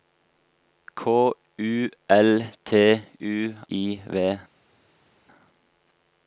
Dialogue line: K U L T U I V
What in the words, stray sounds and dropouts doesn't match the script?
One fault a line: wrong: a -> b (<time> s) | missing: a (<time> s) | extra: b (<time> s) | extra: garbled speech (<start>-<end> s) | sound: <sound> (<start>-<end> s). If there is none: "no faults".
no faults